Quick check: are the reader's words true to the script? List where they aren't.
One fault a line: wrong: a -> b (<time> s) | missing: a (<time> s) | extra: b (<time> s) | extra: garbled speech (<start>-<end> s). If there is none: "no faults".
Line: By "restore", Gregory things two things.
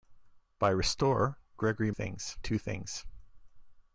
no faults